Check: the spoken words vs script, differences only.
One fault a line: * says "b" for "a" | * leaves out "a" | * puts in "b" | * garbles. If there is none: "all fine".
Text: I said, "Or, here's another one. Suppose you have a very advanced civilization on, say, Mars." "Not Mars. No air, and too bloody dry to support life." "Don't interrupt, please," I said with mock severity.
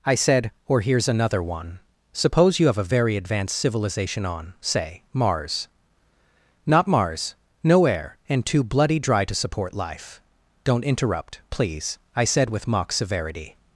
all fine